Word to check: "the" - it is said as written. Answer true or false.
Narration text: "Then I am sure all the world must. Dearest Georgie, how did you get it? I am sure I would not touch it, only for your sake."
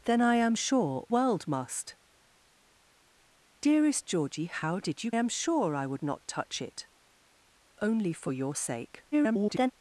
false